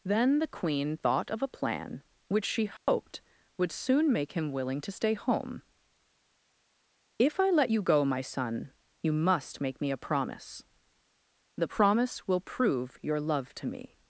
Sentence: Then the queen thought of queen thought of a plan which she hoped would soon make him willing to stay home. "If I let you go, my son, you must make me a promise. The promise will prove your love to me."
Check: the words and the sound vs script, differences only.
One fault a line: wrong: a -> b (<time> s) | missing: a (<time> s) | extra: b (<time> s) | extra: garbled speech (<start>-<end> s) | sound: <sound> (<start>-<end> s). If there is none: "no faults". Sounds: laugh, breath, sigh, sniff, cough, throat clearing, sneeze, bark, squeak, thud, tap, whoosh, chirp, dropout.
missing: queen thought of (1.4 s)
sound: dropout (2.8-2.9 s)